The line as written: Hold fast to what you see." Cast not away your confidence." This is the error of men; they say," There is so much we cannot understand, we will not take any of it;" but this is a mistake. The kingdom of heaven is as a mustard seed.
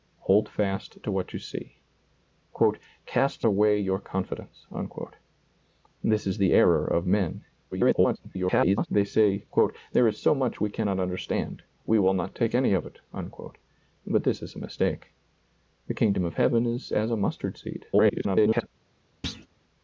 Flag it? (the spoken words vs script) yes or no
yes